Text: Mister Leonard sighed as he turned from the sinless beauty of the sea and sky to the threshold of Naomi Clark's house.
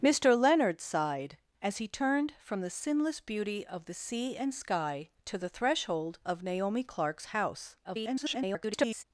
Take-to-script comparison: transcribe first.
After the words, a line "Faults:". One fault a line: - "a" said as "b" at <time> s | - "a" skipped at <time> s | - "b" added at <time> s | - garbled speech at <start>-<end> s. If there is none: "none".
Mister Leonard sighed as he turned from the sinless beauty of the sea and sky to the threshold of Naomi Clark's house. [garbled]
Faults:
- garbled speech at 7.8-9.0 s